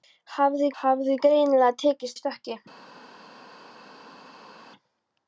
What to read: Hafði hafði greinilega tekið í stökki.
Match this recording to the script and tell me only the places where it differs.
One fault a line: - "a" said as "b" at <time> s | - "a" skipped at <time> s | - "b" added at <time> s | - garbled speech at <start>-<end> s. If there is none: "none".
none